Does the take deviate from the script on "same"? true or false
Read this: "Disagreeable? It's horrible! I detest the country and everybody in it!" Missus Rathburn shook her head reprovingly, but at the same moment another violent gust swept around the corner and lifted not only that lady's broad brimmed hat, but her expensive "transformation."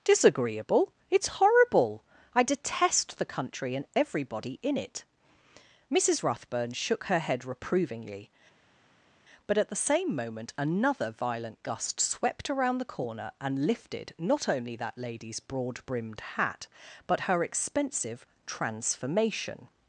false